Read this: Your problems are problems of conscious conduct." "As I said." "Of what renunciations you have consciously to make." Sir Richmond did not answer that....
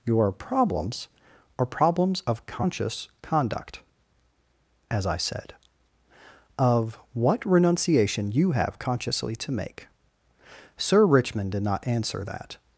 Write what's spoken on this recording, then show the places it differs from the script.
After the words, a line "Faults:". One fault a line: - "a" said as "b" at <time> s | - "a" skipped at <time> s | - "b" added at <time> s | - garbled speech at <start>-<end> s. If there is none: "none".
Your problems are problems of conscious conduct." "As I said." "Of what renunciation you have consciously to make." Sir Richmond did not answer that....
Faults:
- "renunciations" said as "renunciation" at 7.4 s